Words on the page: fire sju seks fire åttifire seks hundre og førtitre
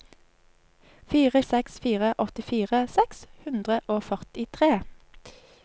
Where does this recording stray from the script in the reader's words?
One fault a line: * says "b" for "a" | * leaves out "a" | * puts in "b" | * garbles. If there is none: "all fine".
* leaves out "sju"